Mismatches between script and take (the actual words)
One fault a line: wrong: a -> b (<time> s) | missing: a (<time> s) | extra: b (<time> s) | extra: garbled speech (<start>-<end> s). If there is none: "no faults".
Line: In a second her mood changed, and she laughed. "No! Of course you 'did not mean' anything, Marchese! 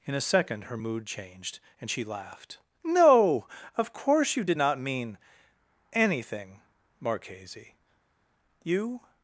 extra: You (8.6 s)